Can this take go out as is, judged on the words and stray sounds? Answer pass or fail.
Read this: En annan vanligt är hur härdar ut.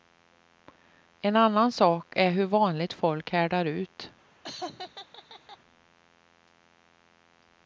fail